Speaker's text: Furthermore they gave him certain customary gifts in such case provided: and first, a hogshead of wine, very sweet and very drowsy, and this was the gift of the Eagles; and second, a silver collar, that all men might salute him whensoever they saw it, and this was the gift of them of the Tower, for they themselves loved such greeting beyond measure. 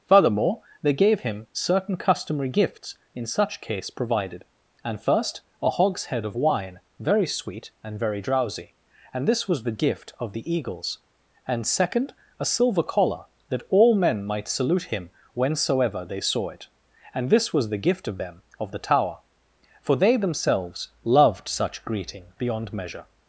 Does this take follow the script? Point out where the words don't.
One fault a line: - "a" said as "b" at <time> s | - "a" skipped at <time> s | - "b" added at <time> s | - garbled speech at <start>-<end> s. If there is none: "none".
none